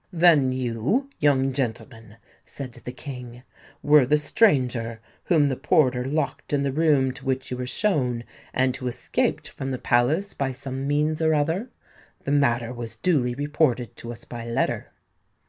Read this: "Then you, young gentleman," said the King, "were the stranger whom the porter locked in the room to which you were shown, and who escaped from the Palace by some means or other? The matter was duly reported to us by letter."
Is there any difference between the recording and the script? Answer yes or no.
no